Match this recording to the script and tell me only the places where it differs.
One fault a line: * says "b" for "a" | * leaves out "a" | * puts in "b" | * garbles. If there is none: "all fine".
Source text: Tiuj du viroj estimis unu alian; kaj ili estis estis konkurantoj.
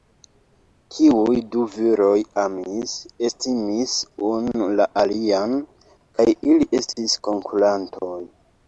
* puts in "amis"
* puts in "la"
* leaves out "estis"